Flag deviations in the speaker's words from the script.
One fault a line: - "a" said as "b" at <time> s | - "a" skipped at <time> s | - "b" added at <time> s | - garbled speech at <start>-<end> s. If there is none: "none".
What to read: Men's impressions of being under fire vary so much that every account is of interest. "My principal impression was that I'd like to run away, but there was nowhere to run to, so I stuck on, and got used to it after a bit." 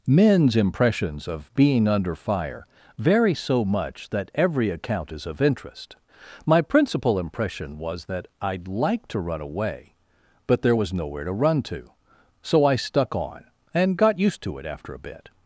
none